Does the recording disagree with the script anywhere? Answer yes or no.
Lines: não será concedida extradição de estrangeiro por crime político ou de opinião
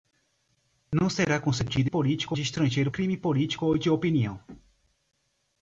yes